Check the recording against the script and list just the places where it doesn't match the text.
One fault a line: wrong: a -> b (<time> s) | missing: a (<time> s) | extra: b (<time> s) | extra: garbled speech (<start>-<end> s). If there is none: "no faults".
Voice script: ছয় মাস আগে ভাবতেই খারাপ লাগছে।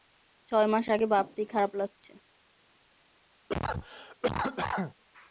no faults